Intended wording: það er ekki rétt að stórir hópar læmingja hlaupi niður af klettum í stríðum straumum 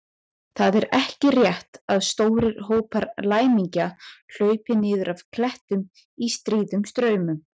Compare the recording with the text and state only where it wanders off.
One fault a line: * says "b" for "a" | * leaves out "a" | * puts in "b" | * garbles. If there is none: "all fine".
all fine